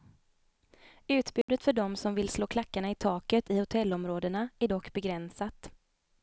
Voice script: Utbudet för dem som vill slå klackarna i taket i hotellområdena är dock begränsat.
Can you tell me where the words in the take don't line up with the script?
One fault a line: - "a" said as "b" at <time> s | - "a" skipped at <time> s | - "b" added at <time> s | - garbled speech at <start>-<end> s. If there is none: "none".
none